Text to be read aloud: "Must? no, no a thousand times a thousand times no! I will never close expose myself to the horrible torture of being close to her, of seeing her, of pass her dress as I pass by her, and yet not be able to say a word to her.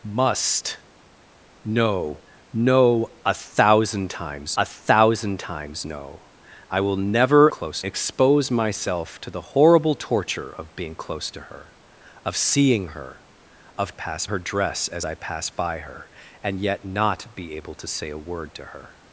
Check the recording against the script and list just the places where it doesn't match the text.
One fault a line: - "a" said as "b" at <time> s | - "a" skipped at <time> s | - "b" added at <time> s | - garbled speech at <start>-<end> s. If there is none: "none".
none